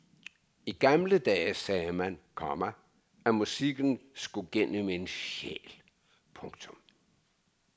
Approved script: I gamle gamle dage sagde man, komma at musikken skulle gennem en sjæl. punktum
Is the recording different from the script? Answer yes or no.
yes